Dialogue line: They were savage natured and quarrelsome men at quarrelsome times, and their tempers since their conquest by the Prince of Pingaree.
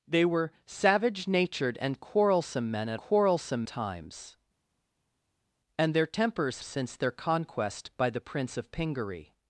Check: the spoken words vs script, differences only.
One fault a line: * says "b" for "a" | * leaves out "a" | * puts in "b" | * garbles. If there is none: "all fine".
all fine